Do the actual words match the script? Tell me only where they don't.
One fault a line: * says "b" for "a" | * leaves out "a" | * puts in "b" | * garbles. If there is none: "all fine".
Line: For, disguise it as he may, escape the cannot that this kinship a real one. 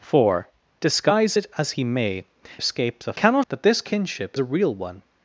all fine